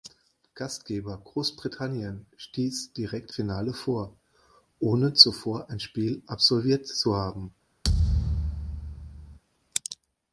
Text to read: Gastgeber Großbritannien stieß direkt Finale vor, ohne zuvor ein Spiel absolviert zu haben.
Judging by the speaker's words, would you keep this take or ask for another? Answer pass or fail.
pass